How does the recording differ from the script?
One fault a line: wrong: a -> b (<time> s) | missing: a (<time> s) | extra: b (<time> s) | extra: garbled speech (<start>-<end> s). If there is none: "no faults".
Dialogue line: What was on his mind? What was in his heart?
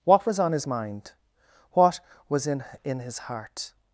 extra: in (2.8 s)